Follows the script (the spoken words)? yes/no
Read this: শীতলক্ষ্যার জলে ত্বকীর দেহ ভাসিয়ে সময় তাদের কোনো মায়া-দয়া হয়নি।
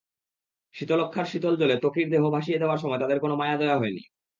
no